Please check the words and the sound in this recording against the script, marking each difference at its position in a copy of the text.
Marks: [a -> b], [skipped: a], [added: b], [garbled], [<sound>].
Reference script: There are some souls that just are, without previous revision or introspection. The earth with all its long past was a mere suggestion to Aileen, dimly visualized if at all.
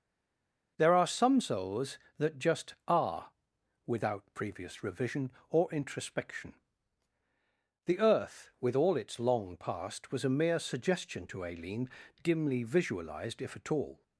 There are some souls that just are, without previous revision or introspection. The earth with all its long past was a mere suggestion to Aileen, dimly visualized if at all.